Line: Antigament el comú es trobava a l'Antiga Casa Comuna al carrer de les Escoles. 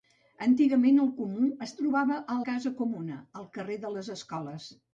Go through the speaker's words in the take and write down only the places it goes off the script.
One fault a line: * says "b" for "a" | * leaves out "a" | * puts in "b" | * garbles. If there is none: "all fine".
* leaves out "l'Antiga"